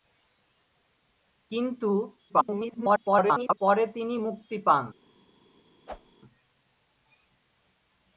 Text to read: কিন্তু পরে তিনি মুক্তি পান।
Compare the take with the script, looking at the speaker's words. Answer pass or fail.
fail